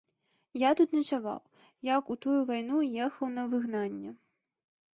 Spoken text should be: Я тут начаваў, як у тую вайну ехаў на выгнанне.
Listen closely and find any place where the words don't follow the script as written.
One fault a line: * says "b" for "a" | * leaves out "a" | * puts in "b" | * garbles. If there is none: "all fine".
all fine